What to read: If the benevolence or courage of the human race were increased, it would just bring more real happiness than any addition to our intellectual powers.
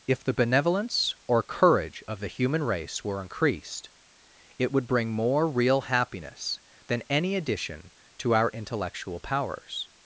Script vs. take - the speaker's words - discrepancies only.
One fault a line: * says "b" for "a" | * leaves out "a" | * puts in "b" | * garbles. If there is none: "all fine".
* leaves out "just"